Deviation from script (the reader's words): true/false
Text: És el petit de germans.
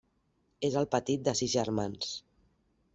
true